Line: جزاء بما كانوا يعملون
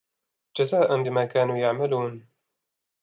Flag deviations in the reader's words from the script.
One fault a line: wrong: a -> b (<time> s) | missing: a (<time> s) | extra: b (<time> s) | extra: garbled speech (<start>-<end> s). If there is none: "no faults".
no faults